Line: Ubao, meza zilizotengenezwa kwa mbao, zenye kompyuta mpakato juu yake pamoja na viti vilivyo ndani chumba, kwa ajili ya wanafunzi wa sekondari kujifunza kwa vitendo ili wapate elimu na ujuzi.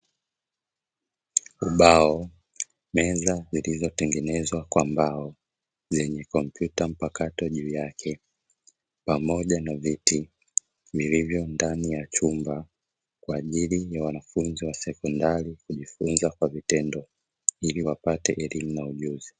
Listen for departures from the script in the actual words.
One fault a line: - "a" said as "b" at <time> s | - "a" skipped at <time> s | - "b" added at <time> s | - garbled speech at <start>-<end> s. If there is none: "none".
- "ya" added at 11.9 s